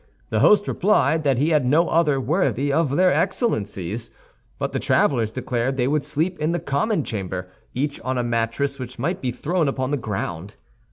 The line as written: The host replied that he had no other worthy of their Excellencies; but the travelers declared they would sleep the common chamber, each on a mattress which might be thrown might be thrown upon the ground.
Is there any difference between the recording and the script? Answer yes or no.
yes